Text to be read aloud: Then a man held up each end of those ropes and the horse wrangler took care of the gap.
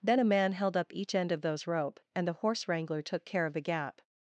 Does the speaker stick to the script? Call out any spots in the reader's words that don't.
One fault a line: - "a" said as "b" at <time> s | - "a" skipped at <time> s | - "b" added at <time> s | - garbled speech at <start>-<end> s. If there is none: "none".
- "ropes" said as "rope" at 1.7 s